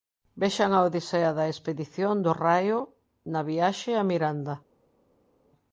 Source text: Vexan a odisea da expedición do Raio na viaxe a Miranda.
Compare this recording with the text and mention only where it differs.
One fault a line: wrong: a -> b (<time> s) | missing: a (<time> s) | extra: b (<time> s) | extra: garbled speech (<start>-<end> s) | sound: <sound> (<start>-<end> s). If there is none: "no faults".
no faults